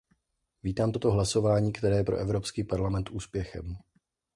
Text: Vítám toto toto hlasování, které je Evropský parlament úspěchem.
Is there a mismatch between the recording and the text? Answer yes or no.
yes